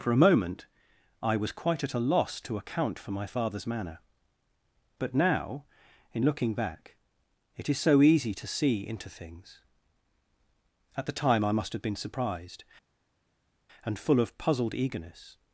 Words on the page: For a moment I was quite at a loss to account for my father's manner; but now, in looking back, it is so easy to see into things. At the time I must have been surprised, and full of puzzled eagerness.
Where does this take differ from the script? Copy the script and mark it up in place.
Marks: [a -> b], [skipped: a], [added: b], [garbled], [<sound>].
For a moment I was quite at a loss to account for my father's manner; but now, in looking back, it is so easy to see into things. At the time I must have been surprised, and full of puzzled eagerness.